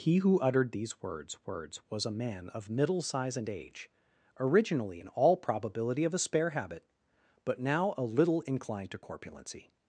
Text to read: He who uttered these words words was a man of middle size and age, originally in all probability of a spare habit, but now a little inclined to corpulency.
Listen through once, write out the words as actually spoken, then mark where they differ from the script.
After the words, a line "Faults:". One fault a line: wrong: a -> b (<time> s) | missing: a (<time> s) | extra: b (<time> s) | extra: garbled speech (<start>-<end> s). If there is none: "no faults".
He who uttered these words words was a man of middle size and age, originally in all probability of a spare habit, but now a little inclined to corpulency.
Faults:
no faults